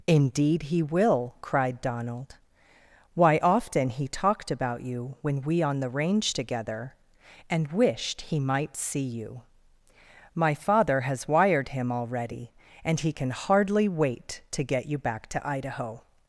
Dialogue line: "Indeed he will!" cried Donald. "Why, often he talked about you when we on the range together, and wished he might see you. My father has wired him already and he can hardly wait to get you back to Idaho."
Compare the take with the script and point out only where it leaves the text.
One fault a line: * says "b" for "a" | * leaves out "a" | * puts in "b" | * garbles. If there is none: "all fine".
all fine